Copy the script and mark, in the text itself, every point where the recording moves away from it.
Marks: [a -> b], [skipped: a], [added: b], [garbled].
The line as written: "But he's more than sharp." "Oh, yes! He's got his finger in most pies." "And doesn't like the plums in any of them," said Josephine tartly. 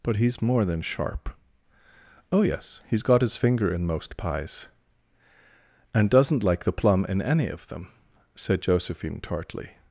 "But he's more than sharp." "Oh, yes! He's got his finger in most pies." "And doesn't like the [plums -> plum] in any of them," said Josephine tartly.